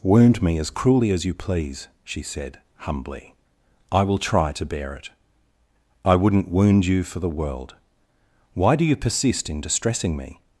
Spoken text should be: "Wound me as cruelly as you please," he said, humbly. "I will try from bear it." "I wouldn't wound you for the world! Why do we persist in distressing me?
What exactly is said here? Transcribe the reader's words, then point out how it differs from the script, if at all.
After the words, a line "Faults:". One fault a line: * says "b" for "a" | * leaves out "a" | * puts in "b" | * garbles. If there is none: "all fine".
"Wound me as cruelly as you please," she said, humbly. "I will try to bear it." "I wouldn't wound you for the world! Why do you persist in distressing me?
Faults:
* says "she" for "he"
* says "to" for "from"
* says "you" for "we"